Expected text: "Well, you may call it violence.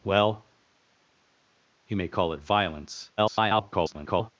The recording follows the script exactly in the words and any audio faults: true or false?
false